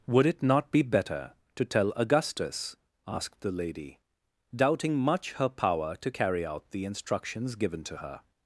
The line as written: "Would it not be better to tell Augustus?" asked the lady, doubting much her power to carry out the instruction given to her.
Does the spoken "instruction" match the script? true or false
false